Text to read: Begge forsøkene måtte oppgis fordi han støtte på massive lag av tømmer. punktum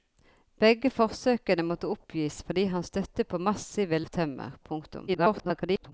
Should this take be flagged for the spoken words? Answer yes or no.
yes